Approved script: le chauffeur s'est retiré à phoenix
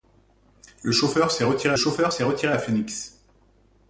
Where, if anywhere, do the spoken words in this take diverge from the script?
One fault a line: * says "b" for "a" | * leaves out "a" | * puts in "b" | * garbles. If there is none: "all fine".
* puts in "chauffeur s'est retiré"